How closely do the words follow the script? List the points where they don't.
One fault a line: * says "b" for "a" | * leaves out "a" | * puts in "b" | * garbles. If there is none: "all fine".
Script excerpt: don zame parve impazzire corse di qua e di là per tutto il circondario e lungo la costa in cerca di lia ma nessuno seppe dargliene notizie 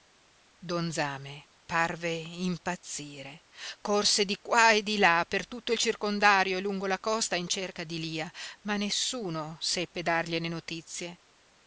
all fine